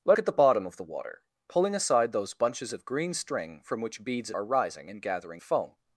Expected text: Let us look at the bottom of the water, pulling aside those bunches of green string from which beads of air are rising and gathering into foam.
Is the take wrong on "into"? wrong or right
wrong